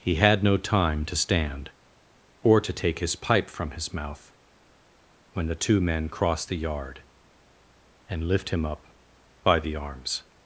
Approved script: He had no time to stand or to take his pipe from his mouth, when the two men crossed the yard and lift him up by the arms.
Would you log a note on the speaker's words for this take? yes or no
no